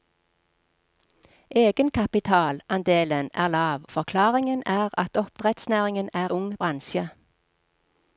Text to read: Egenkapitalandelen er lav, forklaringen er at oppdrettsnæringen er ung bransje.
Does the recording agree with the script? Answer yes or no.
yes